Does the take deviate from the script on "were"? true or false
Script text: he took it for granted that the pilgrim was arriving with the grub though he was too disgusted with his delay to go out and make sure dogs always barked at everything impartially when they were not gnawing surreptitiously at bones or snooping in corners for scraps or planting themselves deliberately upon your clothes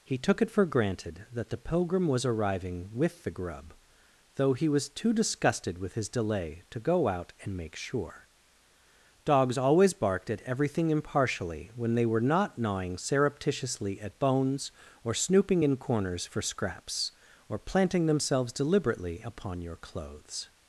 false